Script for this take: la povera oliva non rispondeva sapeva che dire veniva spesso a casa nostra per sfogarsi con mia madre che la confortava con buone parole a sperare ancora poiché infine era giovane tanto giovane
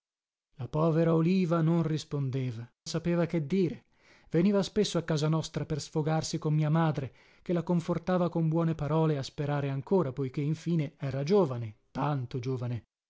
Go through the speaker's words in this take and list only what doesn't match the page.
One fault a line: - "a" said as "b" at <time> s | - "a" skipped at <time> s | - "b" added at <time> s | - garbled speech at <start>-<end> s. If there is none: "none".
none